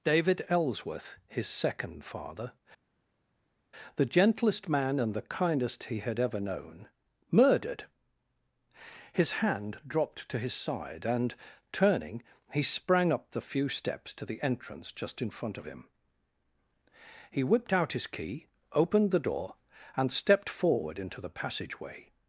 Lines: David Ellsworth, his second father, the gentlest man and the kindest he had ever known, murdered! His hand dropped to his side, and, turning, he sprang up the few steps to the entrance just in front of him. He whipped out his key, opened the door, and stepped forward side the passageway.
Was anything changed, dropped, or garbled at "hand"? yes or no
no